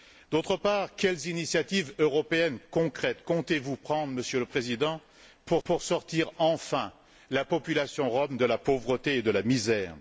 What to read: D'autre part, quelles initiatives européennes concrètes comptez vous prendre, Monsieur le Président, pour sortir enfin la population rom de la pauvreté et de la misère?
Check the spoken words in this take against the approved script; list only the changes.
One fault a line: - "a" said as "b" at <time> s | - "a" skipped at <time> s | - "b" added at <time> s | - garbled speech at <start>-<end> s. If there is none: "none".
- "pour" added at 5.6 s